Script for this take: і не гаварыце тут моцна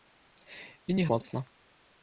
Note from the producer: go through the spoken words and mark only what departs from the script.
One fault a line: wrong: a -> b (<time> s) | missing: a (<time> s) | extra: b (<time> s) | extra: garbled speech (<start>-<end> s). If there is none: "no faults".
missing: гаварыце тут (1.0 s)